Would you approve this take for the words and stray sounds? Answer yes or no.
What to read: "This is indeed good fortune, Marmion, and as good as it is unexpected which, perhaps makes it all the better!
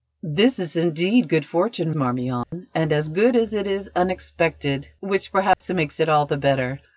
no